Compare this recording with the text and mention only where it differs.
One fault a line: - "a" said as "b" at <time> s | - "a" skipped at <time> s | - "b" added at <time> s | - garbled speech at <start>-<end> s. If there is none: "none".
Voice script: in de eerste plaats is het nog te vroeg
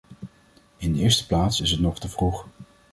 none